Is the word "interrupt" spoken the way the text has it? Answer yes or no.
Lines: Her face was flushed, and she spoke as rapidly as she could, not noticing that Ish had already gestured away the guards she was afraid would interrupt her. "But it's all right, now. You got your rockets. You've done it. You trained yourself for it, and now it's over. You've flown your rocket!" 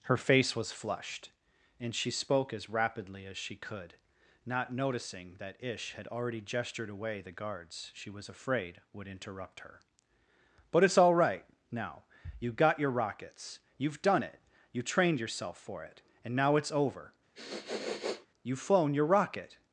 yes